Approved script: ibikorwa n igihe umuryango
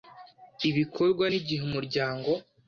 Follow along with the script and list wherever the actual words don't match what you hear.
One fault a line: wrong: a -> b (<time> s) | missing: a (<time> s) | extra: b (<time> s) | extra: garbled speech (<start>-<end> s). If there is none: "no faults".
no faults